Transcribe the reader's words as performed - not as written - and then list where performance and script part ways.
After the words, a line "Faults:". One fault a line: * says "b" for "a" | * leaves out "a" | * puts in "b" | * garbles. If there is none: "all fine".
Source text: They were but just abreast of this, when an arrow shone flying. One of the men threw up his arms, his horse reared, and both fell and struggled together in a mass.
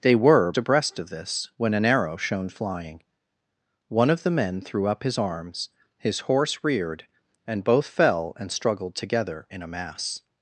They were abreast of this, when an arrow shone flying. One of the men threw up his arms, his horse reared, and both fell and struggled together in a mass.
Faults:
* leaves out "but just"